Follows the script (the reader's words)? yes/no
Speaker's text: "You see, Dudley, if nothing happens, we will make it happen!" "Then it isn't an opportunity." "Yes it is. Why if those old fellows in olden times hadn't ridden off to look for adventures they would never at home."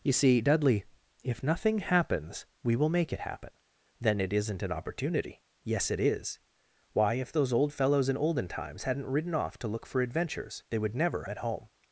yes